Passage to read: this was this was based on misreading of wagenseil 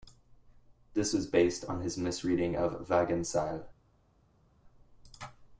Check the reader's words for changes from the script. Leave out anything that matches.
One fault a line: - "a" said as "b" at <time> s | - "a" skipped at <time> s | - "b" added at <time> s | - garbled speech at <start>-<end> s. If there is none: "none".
- "this was" skipped at 1.3 s
- "his" added at 1.8 s